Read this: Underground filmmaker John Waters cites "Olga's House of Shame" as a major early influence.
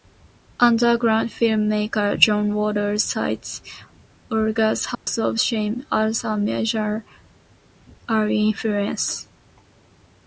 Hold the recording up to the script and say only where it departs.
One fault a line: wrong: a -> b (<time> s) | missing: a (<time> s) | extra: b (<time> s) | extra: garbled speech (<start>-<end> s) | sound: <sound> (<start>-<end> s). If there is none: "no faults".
sound: dropout (4.9-5.1 s)